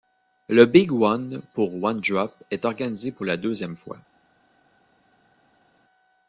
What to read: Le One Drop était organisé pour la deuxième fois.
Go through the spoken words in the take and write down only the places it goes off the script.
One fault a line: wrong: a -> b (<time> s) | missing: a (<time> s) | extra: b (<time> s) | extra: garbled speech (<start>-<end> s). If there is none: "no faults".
extra: Big (0.7 s)
extra: pour One (1.5 s)
wrong: était -> est (2.5 s)